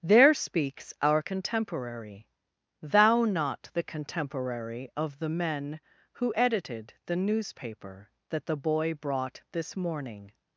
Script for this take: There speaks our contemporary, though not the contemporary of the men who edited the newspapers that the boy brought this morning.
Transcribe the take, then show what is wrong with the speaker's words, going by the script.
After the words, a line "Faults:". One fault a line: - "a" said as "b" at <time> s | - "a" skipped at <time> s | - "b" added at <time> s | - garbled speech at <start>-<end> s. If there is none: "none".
There speaks our contemporary, thou not the contemporary of the men who edited the newspaper that the boy brought this morning.
Faults:
- "though" said as "thou" at 2.8 s
- "newspapers" said as "newspaper" at 7.2 s